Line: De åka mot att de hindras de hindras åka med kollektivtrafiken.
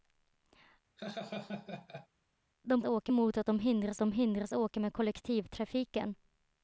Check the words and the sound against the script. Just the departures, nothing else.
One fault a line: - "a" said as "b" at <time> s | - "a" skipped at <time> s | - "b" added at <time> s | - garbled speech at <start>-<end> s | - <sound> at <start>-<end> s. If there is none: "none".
- laugh at 1.0-2.1 s